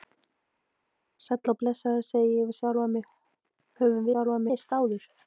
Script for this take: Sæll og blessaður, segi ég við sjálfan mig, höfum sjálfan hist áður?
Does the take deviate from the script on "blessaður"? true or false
false